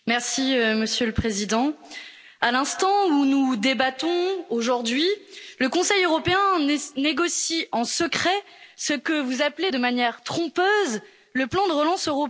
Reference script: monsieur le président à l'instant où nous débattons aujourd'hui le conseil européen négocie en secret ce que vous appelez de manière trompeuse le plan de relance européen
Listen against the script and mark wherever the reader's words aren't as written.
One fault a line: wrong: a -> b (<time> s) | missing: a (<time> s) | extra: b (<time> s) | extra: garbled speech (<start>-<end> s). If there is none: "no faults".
no faults